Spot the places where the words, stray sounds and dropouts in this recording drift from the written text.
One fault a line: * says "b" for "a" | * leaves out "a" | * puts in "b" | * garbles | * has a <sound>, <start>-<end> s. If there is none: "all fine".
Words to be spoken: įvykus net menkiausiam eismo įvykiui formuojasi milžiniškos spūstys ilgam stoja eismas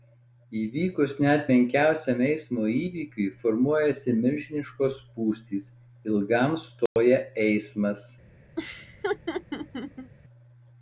* has a dropout, 6.9-7.0 s
* has a laugh, 8.6-10.1 s